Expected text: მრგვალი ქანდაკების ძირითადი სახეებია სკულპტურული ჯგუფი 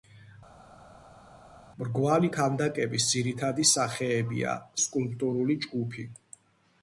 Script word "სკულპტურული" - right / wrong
right